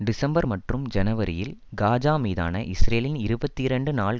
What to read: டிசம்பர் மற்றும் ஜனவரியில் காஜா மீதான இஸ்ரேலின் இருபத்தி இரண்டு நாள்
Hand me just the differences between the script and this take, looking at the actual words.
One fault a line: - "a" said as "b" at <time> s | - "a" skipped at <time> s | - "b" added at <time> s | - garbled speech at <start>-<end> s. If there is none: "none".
none